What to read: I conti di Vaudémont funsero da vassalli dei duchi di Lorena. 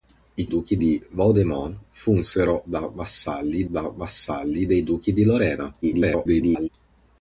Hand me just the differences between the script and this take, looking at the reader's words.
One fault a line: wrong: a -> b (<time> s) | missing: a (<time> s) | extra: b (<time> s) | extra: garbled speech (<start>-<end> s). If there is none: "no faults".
wrong: conti -> duchi (0.5 s)
extra: da vassalli (3.7 s)
extra: garbled speech (5.8-6.7 s)